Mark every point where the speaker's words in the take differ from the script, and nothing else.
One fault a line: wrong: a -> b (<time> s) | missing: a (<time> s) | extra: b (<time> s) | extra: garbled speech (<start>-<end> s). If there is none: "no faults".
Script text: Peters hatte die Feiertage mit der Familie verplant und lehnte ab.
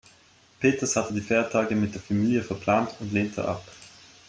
no faults